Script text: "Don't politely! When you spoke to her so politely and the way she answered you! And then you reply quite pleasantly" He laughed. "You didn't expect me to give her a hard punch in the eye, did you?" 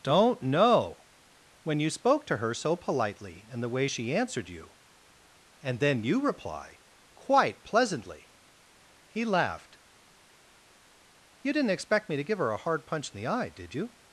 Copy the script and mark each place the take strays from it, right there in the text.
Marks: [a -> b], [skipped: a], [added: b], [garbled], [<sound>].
"Don't [politely! -> know] When you spoke to her so politely and the way she answered you! And then you reply quite pleasantly" He laughed. "You didn't expect me to give her a hard punch in the eye, did you?"